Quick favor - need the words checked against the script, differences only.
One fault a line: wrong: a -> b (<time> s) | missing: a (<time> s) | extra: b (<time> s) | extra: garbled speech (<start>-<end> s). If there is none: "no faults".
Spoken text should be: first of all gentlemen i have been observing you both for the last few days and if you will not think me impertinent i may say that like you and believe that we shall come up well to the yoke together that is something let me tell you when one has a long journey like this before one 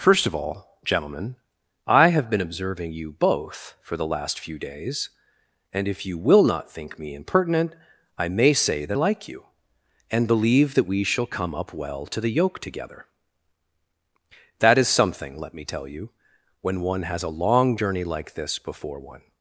no faults